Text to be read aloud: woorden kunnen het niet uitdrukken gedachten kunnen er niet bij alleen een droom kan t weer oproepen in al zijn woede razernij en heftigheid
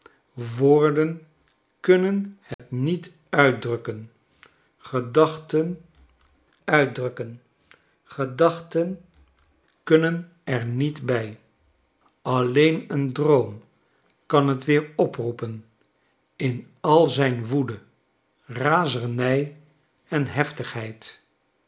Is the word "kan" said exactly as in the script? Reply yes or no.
yes